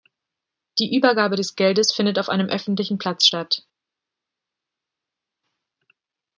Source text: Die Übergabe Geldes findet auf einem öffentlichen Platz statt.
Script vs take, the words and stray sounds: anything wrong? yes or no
yes